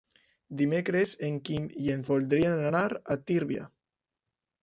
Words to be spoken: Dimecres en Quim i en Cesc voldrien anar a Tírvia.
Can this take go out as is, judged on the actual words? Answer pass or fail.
fail